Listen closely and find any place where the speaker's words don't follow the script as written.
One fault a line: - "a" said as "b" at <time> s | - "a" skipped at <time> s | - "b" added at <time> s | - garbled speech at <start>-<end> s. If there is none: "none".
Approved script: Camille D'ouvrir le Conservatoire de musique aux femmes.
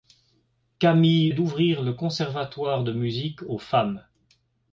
none